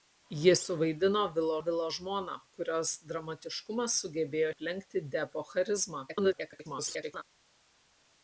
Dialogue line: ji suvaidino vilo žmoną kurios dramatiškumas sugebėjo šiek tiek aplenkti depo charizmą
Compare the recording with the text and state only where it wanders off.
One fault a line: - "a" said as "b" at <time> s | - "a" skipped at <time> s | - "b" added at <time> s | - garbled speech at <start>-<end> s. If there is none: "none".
- "vilo" added at 1.6 s
- "šiek tiek" skipped at 4.5 s
- garbled speech at 6.1-7.2 s